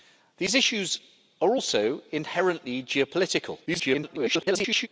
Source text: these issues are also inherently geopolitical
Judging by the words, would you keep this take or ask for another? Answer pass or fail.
fail